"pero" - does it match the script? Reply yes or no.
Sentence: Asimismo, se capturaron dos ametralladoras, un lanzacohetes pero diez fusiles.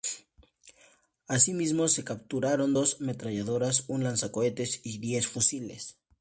no